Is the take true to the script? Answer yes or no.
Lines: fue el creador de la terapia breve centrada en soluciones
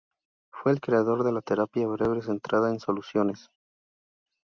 yes